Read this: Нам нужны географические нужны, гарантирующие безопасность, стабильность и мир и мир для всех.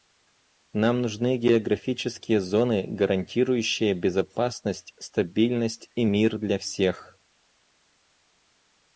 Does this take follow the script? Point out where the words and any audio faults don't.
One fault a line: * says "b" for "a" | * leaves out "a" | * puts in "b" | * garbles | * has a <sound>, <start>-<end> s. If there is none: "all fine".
* says "зоны" for "нужны"
* leaves out "и мир"